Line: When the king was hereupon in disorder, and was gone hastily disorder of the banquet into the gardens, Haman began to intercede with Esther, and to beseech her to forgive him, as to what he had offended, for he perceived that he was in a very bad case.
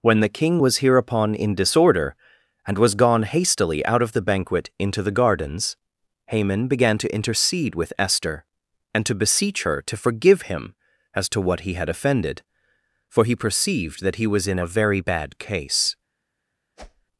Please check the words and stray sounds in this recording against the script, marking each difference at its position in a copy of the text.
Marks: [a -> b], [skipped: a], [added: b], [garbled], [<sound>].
When the king was hereupon in disorder, and was gone hastily [disorder -> out] of the banquet into the gardens, Haman began to intercede with Esther, and to beseech her to forgive him, as to what he had offended, for he perceived that he was in a very bad case. [whoosh]